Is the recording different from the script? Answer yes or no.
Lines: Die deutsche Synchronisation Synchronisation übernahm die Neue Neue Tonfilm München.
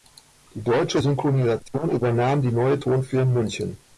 yes